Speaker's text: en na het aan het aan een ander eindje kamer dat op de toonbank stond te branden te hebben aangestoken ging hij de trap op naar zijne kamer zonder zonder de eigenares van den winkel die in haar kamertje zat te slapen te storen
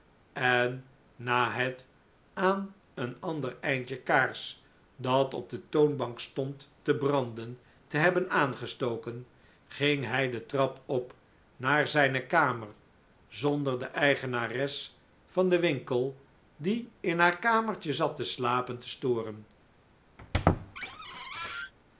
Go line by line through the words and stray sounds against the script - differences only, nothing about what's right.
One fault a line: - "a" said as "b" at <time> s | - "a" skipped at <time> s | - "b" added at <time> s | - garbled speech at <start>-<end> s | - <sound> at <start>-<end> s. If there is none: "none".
- "het aan" skipped at 2.8 s
- "kamer" said as "kaars" at 4.0 s
- "zonder" skipped at 13.8 s
- squeak at 20.2-21.7 s